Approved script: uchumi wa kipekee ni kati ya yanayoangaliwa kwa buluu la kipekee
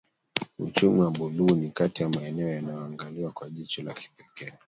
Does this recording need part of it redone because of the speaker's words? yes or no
yes